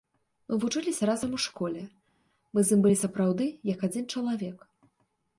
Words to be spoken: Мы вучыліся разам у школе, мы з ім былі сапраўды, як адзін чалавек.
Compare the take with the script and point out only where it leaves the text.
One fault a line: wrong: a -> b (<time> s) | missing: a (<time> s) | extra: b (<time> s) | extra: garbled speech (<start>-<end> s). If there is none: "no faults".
no faults